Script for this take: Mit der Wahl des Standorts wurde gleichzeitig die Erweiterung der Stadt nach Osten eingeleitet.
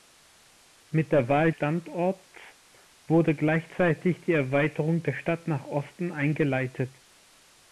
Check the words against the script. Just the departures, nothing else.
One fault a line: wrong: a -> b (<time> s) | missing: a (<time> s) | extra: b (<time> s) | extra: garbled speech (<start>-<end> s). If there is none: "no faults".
missing: des (1.5 s)